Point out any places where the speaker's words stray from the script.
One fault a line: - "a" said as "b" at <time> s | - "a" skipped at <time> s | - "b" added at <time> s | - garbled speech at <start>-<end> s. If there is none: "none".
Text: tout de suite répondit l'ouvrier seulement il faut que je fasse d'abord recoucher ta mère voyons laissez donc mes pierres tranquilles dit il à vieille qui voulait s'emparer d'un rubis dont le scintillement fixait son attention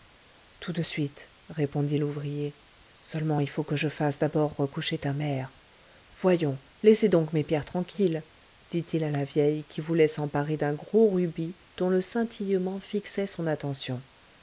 - "la" added at 9.1 s
- "gros" added at 10.7 s